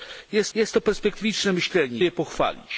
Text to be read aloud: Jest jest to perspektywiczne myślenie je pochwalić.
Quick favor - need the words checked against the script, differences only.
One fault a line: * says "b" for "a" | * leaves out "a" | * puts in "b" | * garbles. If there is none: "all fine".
all fine